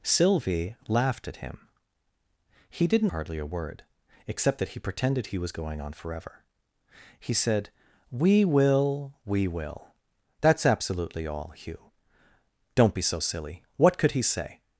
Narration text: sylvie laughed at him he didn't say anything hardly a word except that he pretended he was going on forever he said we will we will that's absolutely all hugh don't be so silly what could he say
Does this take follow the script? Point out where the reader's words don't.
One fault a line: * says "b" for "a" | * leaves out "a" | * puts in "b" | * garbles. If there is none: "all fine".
* leaves out "say anything"